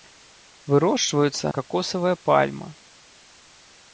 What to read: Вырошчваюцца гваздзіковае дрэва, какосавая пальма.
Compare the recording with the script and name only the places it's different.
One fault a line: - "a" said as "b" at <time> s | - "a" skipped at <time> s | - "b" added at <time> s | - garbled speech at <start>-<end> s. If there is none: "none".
- "гваздзіковае дрэва" skipped at 1.5 s